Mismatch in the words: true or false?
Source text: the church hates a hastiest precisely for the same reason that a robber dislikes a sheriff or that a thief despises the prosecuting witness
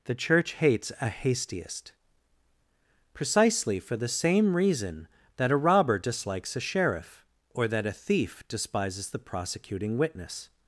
false